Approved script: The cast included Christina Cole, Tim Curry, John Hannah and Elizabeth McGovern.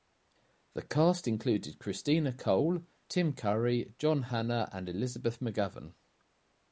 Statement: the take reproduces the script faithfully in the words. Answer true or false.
true